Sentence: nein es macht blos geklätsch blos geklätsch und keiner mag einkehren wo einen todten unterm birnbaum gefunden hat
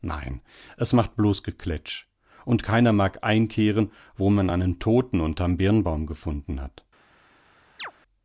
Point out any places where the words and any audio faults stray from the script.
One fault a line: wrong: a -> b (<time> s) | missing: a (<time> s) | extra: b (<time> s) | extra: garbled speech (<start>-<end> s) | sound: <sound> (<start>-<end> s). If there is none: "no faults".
missing: blos geklätsch (2.1 s)
extra: man (4.3 s)
sound: chirp (7.8-7.9 s)